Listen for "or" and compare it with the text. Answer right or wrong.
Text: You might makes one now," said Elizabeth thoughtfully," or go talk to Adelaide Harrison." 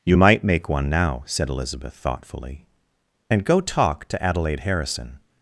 wrong